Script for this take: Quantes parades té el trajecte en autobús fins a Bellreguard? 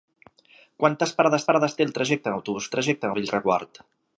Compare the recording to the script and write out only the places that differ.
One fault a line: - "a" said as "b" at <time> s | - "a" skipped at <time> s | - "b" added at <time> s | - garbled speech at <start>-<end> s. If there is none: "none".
- "parades" added at 1.5 s
- "fins" said as "trajecte" at 2.7 s